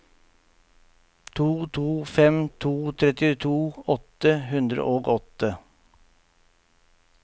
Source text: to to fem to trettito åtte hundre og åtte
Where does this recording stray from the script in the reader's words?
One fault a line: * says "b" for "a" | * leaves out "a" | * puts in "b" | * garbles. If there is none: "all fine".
all fine